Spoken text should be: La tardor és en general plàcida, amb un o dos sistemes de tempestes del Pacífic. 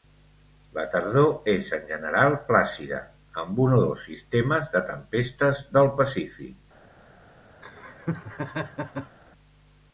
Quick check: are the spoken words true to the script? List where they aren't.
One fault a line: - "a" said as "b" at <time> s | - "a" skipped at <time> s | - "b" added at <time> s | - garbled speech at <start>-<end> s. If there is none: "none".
none